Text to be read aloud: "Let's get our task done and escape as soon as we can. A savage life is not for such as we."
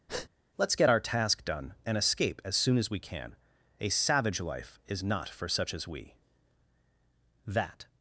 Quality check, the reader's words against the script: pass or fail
fail